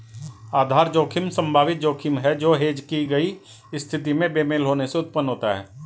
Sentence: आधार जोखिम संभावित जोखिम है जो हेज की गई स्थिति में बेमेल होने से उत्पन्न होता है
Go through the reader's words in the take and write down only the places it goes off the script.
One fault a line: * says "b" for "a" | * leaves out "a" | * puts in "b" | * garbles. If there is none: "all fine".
all fine